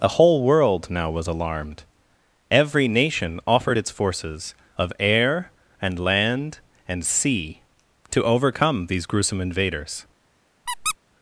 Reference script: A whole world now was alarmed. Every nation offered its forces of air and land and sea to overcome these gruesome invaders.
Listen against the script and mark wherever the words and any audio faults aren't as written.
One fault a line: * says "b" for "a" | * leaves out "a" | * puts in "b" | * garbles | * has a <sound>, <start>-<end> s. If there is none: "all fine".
* has a squeak, 10.7-11.0 s